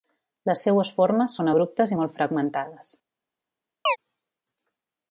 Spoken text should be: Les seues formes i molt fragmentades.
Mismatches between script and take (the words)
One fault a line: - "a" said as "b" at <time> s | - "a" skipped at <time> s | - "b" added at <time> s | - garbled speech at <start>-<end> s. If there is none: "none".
- "són abruptes" added at 1.4 s